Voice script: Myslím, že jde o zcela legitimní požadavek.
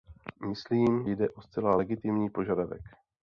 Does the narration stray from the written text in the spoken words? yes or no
yes